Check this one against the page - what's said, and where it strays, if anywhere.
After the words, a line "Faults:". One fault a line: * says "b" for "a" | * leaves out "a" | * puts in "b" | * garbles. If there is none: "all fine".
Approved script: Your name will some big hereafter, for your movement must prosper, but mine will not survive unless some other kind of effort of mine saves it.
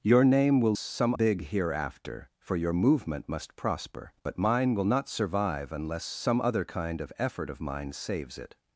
Your name will some big hereafter, for your movement must prosper, but mine will not survive unless some other kind of effort of mine saves it.
Faults:
all fine